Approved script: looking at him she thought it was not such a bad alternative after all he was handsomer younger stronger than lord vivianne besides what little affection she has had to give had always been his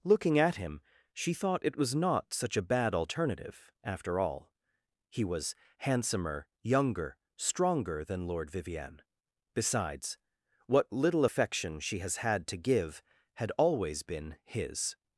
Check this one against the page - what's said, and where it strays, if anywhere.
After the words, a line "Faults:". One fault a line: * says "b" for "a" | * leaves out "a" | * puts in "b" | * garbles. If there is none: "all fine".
looking at him she thought it was not such a bad alternative after all he was handsomer younger stronger than lord vivianne besides what little affection she has had to give had always been his
Faults:
all fine